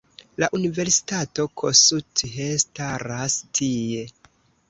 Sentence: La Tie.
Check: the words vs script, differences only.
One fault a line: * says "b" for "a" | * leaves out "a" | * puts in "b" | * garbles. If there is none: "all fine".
* puts in "Universitato Kossuth staras"